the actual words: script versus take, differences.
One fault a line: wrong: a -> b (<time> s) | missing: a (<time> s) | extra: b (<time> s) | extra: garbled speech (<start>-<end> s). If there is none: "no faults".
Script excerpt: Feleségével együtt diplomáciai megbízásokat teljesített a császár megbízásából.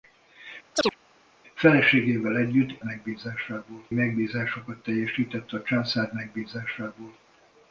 wrong: diplomáciai -> megbízásából (2.8 s)